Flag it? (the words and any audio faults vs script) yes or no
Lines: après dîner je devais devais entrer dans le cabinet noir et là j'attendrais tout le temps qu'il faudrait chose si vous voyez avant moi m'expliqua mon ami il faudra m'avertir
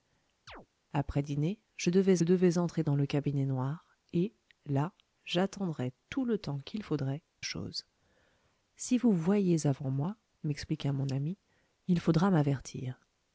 yes